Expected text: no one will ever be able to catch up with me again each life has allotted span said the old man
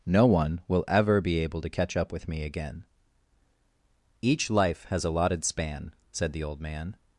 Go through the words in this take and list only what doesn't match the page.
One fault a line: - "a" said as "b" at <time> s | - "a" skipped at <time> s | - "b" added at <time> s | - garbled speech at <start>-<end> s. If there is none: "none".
none